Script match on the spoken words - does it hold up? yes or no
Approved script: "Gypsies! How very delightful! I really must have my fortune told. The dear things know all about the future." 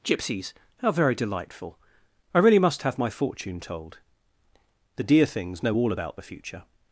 yes